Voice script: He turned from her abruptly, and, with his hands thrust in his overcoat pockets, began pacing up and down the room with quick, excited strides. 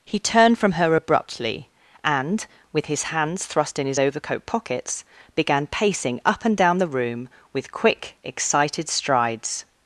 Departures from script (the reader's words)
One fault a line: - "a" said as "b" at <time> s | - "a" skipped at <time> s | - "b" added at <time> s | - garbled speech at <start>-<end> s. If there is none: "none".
none